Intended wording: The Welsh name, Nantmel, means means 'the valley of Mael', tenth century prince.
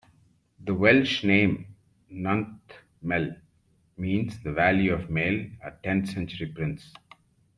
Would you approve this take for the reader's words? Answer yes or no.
no